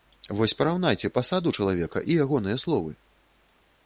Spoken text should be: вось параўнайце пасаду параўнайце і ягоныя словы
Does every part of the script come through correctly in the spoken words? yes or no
no